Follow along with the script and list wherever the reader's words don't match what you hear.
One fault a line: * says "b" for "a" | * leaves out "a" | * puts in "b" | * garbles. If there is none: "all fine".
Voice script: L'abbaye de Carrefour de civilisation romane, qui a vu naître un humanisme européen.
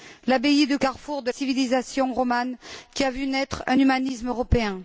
all fine